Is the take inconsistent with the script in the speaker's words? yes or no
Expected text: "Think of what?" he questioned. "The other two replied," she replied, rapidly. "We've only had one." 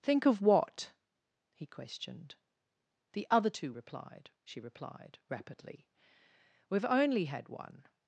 no